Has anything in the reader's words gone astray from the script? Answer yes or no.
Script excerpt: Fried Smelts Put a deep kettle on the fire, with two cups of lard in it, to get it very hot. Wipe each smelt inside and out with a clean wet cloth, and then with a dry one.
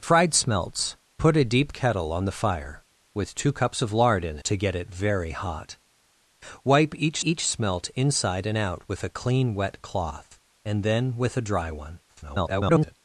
yes